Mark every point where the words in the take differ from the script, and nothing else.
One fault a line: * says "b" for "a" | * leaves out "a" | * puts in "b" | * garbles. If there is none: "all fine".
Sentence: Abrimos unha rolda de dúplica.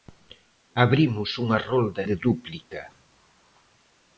all fine